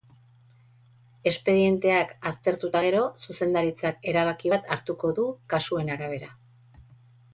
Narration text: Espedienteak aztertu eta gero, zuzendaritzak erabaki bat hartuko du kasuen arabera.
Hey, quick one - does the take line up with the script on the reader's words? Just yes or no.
yes